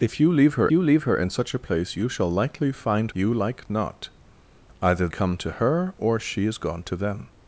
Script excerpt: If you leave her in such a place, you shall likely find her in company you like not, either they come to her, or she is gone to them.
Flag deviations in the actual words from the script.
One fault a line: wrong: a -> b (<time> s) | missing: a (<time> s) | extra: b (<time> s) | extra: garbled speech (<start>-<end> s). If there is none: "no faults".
extra: you leave her (0.7 s)
missing: her in company (3.1 s)
missing: they (5.1 s)